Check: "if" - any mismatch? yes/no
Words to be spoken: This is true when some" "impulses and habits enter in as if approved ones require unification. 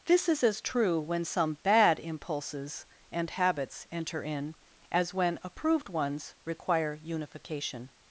yes